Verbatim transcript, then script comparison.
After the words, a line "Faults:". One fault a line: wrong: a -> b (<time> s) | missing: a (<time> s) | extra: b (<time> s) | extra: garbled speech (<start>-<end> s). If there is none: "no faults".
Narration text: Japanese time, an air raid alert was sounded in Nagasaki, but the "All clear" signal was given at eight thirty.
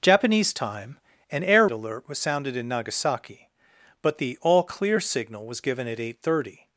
Japanese time, an air alert was sounded in Nagasaki, but the "All clear" signal was given at eight thirty.
Faults:
missing: raid (1.7 s)